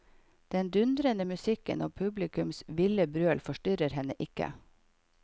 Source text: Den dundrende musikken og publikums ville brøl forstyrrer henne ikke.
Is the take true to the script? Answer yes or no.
yes